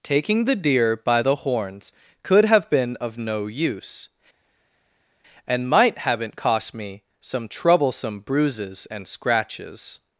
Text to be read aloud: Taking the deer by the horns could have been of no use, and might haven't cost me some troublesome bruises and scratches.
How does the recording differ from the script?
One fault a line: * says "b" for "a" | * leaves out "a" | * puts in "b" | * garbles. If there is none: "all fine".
all fine